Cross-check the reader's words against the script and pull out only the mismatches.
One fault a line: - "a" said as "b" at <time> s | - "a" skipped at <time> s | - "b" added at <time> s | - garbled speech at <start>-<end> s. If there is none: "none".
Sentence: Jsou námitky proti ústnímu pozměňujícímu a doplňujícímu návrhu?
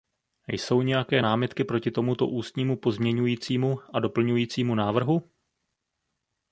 - "nějaké" added at 0.8 s
- "tomuto" added at 1.9 s